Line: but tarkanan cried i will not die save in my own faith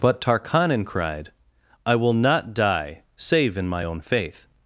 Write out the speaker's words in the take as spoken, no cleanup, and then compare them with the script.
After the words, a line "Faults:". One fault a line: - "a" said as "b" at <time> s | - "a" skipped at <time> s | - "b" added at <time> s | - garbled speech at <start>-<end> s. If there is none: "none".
but tarkanan cried i will not die save in my own faith
Faults:
none